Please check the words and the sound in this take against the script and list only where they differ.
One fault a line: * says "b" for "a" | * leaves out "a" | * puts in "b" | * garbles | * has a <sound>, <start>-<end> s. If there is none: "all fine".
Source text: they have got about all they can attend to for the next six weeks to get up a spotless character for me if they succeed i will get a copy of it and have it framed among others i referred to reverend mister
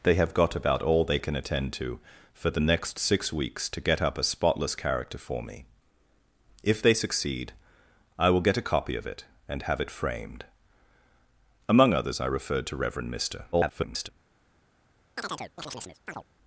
* garbles
* has a chirp, 15.2-16.2 s